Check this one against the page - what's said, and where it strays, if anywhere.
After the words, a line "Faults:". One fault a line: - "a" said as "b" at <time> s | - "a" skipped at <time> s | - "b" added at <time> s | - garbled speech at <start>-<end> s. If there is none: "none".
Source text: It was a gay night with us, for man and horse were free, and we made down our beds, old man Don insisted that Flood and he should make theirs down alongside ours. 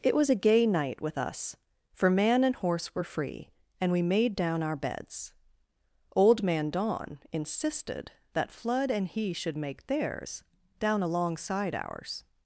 It was a gay night with us, for man and horse were free, and we made down our beds, old man Don insisted that Flood and he should make theirs down alongside ours.
Faults:
none